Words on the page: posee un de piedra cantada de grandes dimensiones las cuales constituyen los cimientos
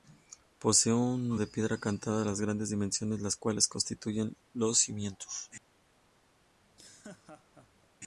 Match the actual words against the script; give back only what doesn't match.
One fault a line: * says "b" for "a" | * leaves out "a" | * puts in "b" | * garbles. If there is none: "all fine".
all fine